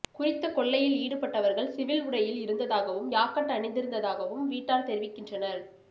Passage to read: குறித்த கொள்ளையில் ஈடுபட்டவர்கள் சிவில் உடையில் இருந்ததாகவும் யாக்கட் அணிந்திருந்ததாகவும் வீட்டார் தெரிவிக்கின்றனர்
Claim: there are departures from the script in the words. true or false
false